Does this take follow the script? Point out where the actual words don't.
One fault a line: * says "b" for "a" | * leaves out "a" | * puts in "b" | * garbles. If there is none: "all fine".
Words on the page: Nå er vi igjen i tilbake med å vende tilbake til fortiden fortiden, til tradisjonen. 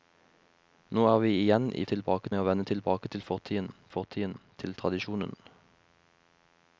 all fine